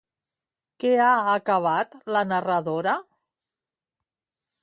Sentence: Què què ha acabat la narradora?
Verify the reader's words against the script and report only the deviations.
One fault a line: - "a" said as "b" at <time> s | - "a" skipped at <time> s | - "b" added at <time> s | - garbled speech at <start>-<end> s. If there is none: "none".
- "què" skipped at 0.9 s